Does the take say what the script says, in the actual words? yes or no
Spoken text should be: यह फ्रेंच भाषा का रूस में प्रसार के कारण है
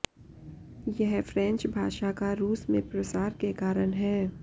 yes